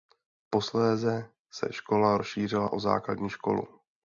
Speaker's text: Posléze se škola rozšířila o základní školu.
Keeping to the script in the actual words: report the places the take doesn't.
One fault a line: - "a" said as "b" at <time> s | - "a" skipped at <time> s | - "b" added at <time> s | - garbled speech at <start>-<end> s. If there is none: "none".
none